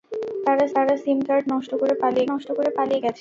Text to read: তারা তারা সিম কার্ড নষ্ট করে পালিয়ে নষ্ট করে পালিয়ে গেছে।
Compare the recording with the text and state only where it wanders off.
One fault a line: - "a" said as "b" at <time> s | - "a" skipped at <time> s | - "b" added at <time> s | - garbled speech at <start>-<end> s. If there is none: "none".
none